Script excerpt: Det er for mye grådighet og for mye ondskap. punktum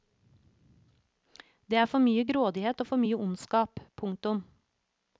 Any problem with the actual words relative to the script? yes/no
no